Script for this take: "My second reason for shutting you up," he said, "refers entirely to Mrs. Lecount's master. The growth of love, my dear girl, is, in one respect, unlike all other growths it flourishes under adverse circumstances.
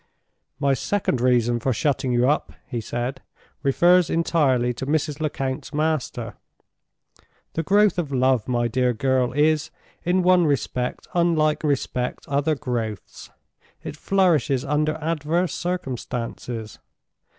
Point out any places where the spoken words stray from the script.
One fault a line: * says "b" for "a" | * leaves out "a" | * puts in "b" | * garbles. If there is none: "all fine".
* says "respect" for "all"